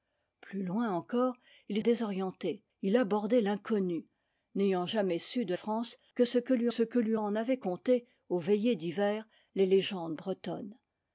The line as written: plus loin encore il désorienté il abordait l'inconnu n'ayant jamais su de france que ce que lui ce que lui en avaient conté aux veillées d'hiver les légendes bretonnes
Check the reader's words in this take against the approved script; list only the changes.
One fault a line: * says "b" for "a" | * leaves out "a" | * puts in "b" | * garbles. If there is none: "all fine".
all fine